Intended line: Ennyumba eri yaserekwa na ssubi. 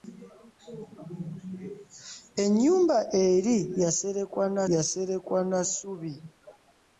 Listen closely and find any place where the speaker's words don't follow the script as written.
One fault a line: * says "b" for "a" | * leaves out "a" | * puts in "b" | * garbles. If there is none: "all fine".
* puts in "yaserekwa na"